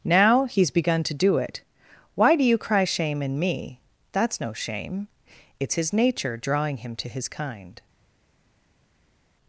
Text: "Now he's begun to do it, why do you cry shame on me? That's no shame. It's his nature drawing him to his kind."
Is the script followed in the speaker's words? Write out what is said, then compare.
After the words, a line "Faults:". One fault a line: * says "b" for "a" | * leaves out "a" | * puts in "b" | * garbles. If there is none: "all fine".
"Now he's begun to do it, why do you cry shame in me? That's no shame. It's his nature drawing him to his kind."
Faults:
* says "in" for "on"